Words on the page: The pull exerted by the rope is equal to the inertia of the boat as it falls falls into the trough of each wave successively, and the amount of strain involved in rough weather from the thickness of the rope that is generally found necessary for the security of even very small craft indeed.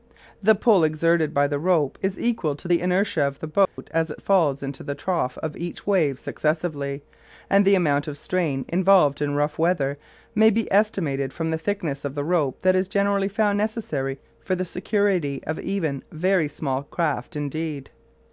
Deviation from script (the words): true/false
true